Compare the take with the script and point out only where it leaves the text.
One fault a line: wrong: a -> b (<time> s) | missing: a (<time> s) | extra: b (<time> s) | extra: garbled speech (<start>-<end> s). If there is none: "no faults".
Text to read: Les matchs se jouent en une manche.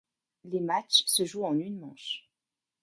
no faults